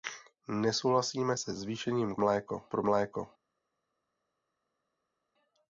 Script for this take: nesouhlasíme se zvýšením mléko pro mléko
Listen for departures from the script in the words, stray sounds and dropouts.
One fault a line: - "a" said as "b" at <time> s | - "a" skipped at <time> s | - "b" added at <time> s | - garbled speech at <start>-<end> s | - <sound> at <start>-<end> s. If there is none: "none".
none